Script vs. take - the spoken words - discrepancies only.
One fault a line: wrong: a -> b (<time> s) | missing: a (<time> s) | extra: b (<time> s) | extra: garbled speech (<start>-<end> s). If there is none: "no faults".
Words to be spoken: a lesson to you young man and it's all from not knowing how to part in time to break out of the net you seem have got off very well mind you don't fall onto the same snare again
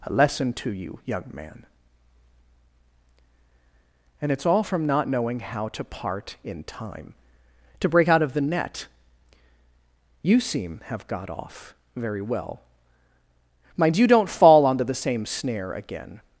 no faults